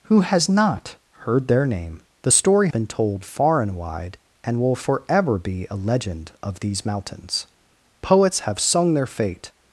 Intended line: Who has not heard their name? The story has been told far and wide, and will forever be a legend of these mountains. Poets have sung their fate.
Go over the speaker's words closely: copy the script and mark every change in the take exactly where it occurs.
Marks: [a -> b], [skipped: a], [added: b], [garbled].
Who has not heard their name? The story [skipped: has] been told far and wide, and will forever be a legend of these mountains. Poets have sung their fate.